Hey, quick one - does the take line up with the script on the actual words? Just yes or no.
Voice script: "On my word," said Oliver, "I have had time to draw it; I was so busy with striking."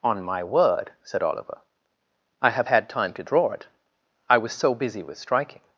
yes